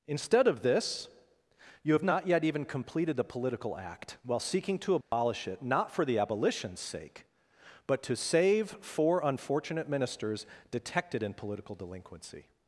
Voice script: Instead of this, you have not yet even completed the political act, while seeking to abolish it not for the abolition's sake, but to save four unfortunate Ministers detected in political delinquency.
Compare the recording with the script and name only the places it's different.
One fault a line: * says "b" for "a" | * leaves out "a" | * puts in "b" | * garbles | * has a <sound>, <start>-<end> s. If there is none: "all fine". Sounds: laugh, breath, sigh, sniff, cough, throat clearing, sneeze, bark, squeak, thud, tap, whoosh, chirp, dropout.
* has a dropout, 5.0-5.1 s